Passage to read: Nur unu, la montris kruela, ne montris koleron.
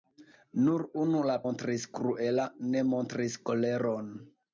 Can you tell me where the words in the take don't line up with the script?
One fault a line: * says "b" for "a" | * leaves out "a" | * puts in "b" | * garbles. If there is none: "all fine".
all fine